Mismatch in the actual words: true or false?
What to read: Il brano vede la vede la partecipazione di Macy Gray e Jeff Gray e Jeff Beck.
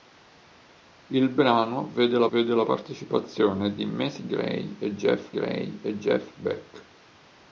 false